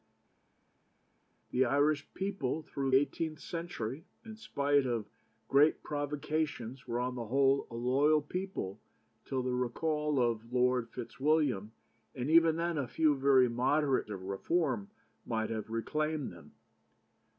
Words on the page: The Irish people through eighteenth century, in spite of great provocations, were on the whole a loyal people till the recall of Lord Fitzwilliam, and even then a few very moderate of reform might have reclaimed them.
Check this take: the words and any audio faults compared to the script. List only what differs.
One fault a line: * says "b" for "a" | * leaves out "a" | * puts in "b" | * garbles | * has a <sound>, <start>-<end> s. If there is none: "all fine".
all fine